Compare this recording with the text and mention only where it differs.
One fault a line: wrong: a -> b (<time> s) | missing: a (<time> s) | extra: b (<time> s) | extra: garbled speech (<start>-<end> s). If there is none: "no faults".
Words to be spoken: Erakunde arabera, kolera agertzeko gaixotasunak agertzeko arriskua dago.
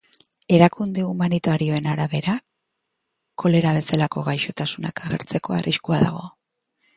extra: humanitarioen (1.1 s)
wrong: agertzeko -> bezalako (3.8 s)